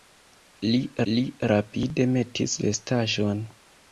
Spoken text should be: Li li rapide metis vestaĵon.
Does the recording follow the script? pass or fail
pass